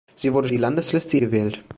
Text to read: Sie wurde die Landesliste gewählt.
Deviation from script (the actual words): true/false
false